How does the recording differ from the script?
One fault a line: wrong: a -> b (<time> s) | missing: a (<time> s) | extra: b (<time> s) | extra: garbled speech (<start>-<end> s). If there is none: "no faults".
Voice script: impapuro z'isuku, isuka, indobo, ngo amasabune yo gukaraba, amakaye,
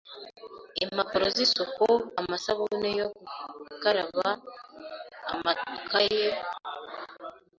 missing: isuka indobo ngo (1.9 s)